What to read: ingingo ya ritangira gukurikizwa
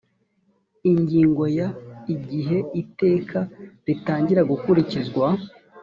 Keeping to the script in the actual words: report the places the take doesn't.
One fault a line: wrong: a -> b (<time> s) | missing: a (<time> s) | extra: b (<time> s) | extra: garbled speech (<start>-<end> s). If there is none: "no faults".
extra: igihe iteka (2.1 s)